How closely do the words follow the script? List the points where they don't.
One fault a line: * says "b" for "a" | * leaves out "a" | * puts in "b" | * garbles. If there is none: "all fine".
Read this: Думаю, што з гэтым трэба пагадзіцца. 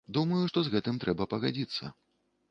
all fine